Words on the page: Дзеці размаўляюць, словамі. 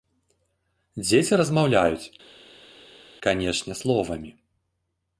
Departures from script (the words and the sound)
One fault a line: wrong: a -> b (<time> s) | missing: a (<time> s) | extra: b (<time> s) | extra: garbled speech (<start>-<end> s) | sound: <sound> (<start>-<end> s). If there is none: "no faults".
extra: канешне (3.3 s)